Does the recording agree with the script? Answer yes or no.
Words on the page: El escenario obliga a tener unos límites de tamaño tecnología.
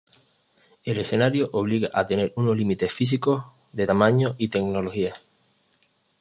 no